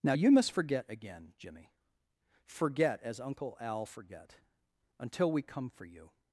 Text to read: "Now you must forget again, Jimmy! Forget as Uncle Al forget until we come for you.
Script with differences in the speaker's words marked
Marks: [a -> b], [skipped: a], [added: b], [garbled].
"Now you must forget again, Jimmy! Forget as Uncle Al forget until we come for you.